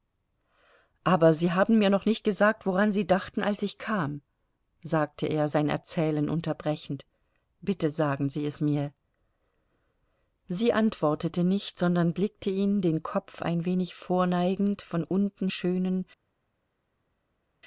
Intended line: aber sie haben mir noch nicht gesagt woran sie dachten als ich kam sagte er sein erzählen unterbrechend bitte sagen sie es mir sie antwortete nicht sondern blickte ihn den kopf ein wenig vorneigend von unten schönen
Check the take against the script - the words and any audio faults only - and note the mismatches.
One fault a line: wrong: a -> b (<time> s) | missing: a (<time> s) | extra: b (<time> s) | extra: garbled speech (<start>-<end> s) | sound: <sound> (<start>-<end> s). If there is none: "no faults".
no faults